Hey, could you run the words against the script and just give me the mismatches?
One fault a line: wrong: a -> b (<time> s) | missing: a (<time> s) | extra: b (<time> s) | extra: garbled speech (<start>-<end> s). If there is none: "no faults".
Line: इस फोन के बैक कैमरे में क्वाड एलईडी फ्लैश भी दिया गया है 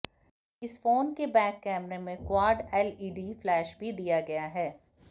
no faults